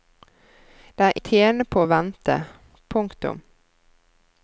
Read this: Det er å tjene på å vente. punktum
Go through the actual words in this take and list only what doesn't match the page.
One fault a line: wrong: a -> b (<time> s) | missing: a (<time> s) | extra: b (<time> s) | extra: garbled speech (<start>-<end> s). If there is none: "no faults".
no faults